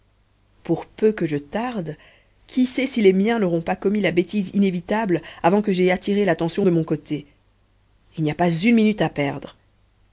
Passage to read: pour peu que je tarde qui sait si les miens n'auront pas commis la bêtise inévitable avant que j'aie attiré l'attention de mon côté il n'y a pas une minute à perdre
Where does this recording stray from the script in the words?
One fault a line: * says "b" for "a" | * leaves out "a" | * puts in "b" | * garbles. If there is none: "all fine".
all fine